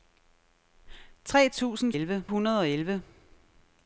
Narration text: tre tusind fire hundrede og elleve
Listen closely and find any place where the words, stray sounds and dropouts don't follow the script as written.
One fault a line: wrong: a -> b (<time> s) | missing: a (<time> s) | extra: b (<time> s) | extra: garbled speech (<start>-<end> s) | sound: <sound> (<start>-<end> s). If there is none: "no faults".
wrong: fire -> elleve (1.9 s)